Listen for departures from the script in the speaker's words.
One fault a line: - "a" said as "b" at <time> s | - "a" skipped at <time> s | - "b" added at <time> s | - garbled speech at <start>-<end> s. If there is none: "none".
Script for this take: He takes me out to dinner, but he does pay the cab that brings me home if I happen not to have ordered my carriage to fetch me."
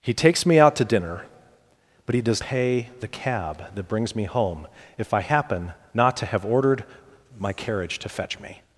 none